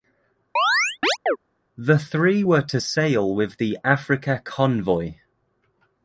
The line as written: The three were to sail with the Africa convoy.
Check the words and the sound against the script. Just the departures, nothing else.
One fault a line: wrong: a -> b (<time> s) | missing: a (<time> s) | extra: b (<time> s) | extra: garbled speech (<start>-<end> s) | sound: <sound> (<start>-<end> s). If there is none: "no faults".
sound: chirp (0.6-1.4 s)